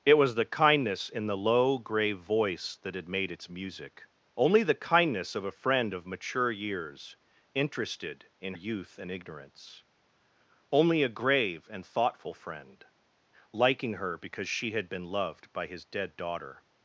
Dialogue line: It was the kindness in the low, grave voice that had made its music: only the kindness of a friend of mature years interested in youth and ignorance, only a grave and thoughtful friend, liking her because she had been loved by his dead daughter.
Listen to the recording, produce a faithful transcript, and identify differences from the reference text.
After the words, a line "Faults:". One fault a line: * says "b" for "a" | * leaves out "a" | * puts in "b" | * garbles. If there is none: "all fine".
It was the kindness in the low, grave voice that had made its music: only the kindness of a friend of mature years interested in youth and ignorance, only a grave and thoughtful friend, liking her because she had been loved by his dead daughter.
Faults:
all fine